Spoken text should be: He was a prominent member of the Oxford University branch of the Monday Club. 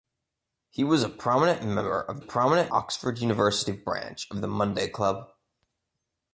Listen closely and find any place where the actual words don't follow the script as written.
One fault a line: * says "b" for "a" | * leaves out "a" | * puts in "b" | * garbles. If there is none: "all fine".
* says "prominent" for "the"